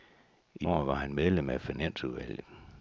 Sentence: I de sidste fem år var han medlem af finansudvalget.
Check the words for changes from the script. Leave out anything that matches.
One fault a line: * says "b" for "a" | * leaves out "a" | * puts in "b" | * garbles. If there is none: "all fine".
* leaves out "de sidste fem"